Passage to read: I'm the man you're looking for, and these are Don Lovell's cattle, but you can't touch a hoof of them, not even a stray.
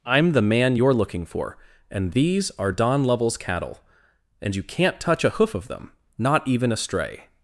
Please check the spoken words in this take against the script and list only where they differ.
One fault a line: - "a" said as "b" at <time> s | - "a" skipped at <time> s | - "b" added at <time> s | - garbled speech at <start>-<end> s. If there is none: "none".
- "but" said as "and" at 4.4 s